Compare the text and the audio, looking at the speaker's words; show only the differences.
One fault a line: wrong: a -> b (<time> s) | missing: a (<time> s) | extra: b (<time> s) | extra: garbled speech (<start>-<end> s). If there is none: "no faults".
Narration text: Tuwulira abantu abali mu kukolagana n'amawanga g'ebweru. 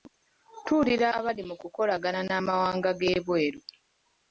missing: abantu (1.1 s)